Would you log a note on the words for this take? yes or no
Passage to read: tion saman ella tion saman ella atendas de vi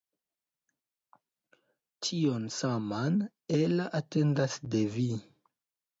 yes